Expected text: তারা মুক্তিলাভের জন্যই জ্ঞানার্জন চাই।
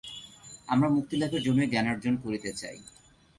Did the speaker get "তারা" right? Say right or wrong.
wrong